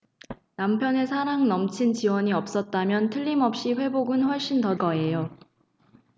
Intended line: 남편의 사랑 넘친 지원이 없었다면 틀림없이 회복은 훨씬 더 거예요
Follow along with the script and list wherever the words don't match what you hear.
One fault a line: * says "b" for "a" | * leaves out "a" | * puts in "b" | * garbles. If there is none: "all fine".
all fine